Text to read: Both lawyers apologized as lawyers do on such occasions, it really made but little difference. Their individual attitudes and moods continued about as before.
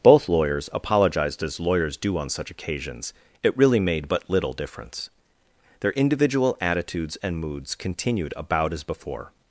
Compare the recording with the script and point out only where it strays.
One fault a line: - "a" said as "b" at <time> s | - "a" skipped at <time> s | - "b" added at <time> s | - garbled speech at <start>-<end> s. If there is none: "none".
none